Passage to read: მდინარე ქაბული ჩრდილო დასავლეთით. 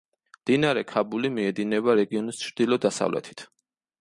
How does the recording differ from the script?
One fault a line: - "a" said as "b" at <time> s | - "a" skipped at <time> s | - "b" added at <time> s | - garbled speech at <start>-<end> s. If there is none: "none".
- "მიედინება რეგიონის" added at 1.4 s